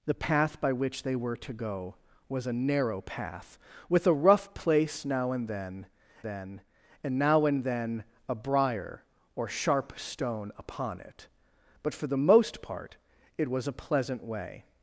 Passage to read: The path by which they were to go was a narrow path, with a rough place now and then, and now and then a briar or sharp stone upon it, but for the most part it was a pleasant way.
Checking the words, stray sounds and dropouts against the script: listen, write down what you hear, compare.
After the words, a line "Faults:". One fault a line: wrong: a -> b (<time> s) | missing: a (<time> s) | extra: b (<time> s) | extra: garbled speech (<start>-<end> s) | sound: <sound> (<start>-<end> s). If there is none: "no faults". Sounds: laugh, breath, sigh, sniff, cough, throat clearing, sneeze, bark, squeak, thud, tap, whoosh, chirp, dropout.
The path by which they were to go was a narrow path, with a rough place now and then then, and now and then a briar or sharp stone upon it, but for the most part it was a pleasant way.
Faults:
extra: then (6.2 s)